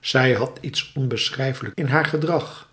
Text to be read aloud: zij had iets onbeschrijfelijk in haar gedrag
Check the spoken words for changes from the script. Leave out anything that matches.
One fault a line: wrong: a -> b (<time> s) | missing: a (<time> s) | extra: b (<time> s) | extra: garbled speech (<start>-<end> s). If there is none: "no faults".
no faults